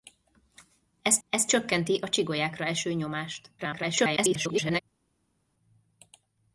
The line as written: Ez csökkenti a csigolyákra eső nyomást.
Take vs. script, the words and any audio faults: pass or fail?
fail